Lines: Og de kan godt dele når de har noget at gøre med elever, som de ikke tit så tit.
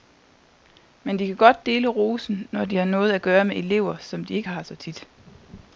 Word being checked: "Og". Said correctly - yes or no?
no